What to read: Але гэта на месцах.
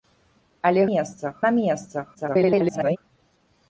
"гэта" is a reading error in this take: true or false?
true